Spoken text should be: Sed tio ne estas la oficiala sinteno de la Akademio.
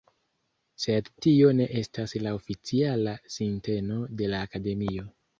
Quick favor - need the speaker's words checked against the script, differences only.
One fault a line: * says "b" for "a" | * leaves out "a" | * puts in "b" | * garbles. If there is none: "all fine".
all fine